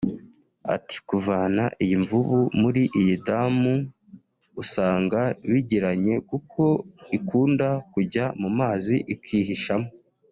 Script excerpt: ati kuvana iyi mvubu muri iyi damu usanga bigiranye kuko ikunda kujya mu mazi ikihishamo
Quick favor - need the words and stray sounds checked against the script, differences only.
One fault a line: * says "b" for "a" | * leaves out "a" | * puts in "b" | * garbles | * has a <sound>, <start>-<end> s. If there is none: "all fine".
all fine